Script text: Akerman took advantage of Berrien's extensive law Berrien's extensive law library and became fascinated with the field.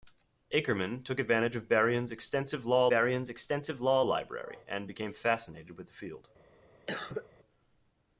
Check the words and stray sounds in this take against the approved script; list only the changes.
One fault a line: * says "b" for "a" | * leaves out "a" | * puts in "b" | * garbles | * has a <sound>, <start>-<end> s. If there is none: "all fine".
* has a cough, 6.9-7.3 s